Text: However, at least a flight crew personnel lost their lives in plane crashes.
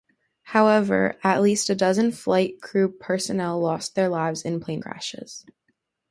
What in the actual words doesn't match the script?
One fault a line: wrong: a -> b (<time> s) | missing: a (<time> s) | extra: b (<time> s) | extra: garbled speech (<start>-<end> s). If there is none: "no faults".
extra: dozen (1.8 s)